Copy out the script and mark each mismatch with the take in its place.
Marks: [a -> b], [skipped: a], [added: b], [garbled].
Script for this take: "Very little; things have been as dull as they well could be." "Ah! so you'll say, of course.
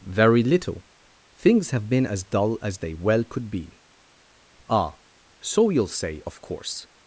"Very little; things have been as dull as they well could be." "Ah! so you'll say, of course.